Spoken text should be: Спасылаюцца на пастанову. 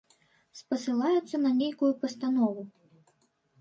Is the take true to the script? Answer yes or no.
no